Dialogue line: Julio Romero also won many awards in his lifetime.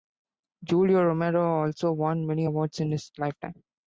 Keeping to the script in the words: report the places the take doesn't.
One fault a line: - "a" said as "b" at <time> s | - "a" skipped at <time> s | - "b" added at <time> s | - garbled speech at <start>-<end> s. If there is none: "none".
none